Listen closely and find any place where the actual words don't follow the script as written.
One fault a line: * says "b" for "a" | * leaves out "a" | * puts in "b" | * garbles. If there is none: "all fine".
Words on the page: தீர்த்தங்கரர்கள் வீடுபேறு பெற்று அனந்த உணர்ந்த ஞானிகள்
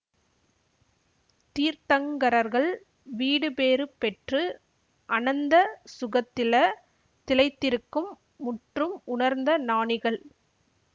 * puts in "சுகத்தில திளைத்திருக்கும் முற்றும்"